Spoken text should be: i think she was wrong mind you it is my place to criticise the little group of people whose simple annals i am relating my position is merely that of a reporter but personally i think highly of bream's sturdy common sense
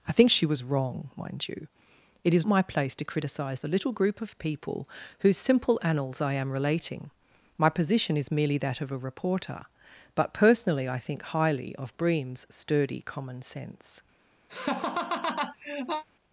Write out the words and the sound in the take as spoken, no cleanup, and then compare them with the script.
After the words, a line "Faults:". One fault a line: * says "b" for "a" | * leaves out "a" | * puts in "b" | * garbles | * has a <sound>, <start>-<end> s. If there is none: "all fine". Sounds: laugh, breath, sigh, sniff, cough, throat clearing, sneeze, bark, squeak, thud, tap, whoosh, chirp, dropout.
i think she was wrong mind you it is my place to criticise the little group of people whose simple annals i am relating my position is merely that of a reporter but personally i think highly of bream's sturdy common sense
Faults:
* has a laugh, 14.5-16.0 s